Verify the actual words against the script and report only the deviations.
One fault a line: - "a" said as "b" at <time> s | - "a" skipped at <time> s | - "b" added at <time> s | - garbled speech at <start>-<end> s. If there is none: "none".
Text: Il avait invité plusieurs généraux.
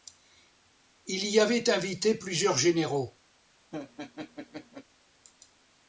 - "y" added at 1.3 s